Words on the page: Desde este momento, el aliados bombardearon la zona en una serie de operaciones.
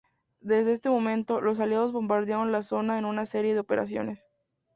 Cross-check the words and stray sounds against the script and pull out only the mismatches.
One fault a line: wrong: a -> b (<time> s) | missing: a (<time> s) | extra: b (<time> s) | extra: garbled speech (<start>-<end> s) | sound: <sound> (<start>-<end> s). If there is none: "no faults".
wrong: el -> los (1.4 s)